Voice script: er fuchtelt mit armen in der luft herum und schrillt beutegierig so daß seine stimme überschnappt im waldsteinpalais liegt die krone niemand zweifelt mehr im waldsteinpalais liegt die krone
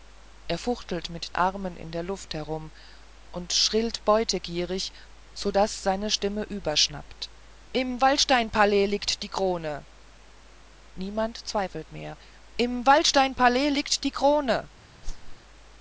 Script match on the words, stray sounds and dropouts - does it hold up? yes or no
no